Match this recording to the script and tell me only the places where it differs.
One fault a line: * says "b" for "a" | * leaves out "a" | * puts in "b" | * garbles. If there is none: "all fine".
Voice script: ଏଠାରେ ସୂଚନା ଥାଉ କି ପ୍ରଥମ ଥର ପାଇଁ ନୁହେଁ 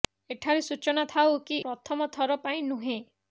all fine